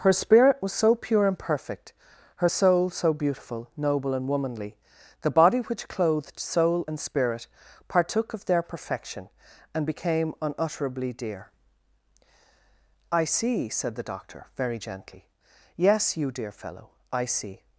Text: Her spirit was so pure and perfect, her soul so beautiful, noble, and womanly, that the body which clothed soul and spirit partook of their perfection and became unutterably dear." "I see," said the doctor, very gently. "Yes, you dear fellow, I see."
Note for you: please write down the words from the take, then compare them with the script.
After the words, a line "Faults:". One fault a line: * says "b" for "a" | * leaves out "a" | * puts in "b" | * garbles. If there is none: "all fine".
Her spirit was so pure and perfect, her soul so beautiful, noble, and womanly, the body which clothed soul and spirit partook of their perfection and became unutterably dear." "I see," said the doctor, very gently. "Yes, you dear fellow, I see."
Faults:
* leaves out "that"